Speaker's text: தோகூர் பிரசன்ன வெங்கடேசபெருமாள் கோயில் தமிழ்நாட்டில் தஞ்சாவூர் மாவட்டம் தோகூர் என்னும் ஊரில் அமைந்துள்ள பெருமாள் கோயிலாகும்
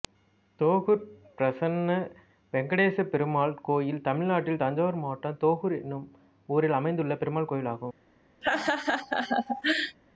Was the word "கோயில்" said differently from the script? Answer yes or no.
no